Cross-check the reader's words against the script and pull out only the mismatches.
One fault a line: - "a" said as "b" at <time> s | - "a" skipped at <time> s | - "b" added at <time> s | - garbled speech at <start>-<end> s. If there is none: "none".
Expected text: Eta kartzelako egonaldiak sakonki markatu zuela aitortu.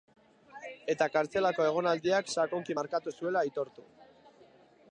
none